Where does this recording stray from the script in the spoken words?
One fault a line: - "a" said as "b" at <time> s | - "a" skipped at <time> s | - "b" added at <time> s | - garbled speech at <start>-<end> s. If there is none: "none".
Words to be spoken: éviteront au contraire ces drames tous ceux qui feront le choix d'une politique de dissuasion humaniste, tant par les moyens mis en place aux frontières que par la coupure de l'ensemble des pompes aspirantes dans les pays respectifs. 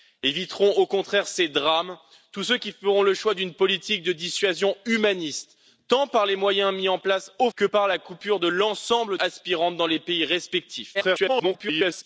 - "frontières" skipped at 7.5 s
- "des pompes" skipped at 9.2 s
- garbled speech at 10.9-12.0 s